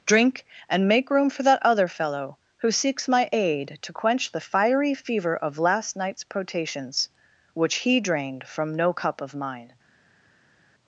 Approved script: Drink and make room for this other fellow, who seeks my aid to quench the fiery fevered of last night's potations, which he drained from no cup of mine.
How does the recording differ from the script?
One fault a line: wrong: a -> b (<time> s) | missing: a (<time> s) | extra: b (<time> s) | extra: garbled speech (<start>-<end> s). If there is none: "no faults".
wrong: this -> that (1.4 s)
wrong: fevered -> fever (4.9 s)